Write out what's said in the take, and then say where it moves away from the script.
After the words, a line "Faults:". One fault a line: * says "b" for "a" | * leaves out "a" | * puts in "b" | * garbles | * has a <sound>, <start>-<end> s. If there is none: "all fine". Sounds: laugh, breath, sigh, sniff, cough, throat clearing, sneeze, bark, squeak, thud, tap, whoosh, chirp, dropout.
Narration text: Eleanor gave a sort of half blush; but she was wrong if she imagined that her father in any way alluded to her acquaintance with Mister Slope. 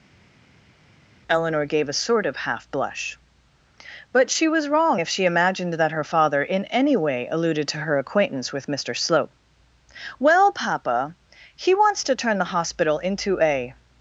Eleanor gave a sort of half blush; but she was wrong if she imagined that her father in any way alluded to her acquaintance with Mister Slope. 'Well, papa.' 'He wants to turn the hospital into a
Faults:
* puts in "Well papa He wants to turn the hospital into a"